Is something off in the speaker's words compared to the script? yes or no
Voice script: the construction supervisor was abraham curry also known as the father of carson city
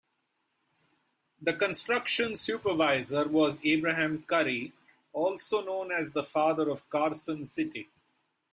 no